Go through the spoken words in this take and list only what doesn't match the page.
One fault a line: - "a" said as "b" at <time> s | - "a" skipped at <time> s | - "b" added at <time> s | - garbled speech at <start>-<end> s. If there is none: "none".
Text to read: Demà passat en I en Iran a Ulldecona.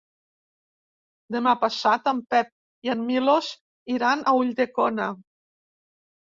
- "Pep" added at 2.4 s
- "Milos" added at 3.1 s